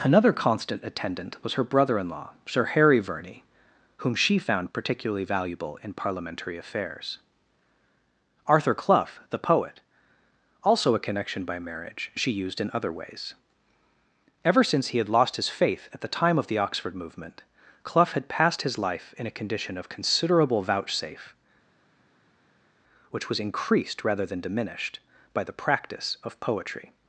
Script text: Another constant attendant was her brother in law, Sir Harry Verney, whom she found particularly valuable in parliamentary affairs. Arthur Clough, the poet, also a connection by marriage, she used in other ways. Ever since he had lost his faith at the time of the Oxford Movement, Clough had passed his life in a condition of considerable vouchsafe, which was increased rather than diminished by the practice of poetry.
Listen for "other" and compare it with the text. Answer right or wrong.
right